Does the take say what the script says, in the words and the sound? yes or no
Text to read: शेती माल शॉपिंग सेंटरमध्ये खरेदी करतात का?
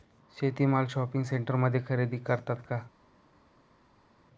yes